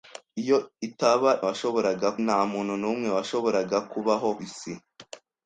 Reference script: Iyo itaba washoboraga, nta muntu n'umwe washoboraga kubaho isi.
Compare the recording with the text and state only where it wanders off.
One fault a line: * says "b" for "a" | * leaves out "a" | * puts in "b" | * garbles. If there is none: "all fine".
all fine